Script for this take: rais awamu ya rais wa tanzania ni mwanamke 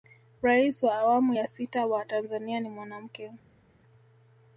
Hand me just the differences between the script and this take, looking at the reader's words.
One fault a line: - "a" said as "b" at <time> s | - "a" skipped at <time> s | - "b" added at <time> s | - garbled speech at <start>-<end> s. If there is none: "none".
- "wa" added at 0.8 s
- "rais" said as "sita" at 1.5 s